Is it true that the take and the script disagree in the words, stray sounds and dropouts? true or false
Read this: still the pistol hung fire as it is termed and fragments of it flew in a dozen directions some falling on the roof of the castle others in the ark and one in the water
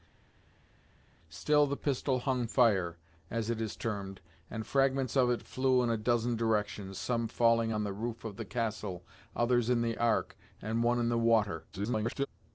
true